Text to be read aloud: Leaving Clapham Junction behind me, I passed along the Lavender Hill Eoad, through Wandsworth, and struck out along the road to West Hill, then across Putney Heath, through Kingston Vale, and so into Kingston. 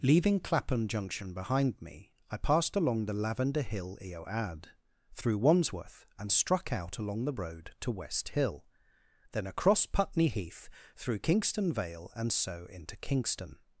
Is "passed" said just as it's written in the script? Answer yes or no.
yes